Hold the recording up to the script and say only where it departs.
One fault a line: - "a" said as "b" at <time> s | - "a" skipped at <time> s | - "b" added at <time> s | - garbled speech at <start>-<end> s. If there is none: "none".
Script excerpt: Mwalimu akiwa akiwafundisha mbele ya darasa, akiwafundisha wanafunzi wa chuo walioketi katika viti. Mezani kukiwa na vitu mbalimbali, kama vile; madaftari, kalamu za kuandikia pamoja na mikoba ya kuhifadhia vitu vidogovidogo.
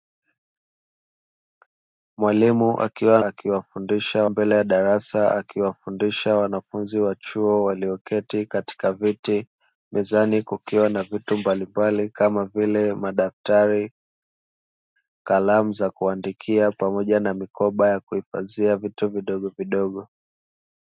none